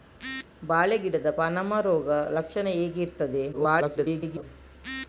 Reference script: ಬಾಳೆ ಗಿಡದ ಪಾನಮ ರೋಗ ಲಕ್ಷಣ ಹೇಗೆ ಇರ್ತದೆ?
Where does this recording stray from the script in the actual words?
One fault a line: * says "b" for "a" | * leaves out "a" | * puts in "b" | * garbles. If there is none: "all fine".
* garbles